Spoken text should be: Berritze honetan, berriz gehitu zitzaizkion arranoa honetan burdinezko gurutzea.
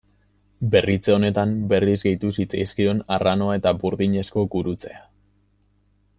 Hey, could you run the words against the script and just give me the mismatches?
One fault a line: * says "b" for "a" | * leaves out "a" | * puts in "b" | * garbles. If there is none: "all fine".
* says "eta" for "honetan"